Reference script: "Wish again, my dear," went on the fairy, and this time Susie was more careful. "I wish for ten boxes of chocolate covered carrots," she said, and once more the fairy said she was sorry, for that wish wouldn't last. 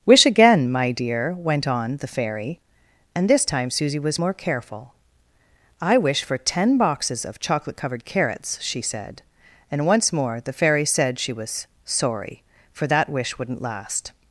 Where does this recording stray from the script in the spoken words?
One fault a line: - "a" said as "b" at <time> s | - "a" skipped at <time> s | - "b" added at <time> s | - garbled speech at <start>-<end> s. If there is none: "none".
none